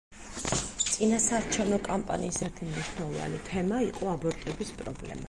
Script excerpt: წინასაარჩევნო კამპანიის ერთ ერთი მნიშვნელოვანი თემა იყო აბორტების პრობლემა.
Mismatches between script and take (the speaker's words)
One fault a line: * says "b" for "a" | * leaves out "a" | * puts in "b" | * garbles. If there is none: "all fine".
* leaves out "ერთ"